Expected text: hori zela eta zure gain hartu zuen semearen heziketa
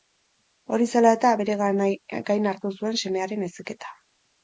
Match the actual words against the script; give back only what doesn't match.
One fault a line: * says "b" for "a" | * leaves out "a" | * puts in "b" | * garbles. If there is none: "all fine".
* says "bere" for "zure"